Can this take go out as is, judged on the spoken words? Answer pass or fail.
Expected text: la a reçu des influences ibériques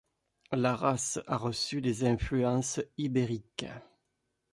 fail